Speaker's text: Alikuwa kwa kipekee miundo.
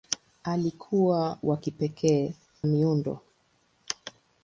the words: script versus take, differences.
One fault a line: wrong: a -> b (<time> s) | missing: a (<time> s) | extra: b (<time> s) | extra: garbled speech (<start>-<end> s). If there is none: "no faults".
no faults